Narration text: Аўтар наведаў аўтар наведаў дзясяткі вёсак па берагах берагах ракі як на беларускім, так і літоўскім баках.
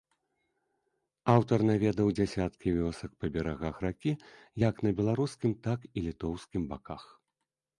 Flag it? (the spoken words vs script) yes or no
yes